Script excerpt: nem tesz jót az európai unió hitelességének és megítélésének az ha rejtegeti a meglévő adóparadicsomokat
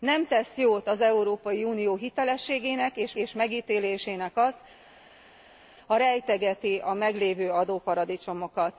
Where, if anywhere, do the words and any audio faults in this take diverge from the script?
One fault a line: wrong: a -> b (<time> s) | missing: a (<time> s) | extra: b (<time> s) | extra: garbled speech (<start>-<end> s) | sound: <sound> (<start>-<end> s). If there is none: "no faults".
extra: és (3.2 s)